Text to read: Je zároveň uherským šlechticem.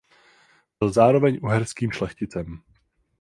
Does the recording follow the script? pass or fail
fail